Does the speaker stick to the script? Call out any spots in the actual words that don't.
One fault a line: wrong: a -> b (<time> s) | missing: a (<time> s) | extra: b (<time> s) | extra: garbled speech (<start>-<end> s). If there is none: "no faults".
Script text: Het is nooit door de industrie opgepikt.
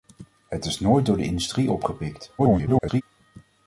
extra: garbled speech (2.4-3.0 s)